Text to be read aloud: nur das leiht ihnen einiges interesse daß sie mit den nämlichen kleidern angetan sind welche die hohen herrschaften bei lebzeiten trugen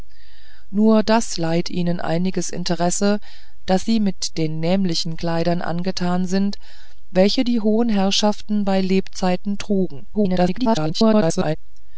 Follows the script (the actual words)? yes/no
no